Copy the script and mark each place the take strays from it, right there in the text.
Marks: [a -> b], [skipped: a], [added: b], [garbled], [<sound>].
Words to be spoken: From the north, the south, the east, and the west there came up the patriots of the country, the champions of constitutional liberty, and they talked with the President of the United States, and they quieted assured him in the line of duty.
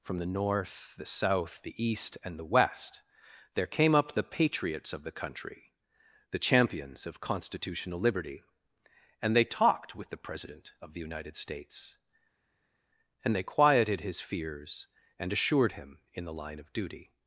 From the north, the south, the east, and the west there came up the patriots of the country, the champions of constitutional liberty, and they talked with the President of the United States, and they quieted [added: his fears and] assured him in the line of duty.